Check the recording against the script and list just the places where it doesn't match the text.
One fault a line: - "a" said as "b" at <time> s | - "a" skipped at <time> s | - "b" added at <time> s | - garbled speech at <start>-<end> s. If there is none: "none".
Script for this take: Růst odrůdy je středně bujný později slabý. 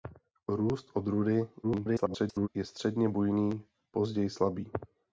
- garbled speech at 1.6-2.5 s